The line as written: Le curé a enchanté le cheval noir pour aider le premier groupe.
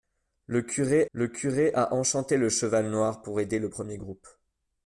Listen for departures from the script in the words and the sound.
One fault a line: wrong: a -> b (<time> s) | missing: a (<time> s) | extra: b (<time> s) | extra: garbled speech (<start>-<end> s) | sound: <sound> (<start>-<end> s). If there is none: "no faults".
extra: le curé (1.1 s)